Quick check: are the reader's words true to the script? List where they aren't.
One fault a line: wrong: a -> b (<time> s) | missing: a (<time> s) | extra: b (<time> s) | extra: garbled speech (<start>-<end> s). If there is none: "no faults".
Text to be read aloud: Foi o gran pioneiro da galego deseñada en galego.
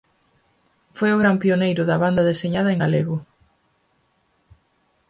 wrong: galego -> banda (2.0 s)